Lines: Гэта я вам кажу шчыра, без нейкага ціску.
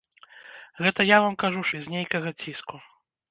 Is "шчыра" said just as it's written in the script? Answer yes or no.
no